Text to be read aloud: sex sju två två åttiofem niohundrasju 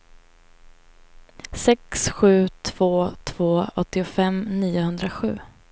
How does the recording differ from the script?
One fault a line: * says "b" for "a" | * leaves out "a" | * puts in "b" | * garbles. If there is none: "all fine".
all fine